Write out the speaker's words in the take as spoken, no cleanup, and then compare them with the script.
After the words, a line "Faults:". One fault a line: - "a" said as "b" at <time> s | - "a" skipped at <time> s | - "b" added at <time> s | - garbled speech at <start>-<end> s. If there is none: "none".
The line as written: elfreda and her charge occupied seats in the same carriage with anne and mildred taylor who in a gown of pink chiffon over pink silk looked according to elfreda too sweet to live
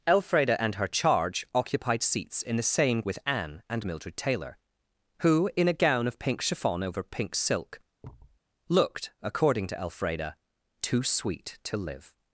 elfreda and her charge occupied seats in the same with anne and mildred taylor who in a gown of pink chiffon over pink silk looked according to elfreda too sweet to live
Faults:
- "carriage" skipped at 3.0 s